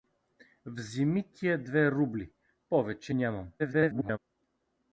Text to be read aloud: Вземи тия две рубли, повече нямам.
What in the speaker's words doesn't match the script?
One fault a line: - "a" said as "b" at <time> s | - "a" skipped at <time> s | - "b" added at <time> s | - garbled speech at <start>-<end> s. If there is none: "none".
- garbled speech at 3.6-4.2 s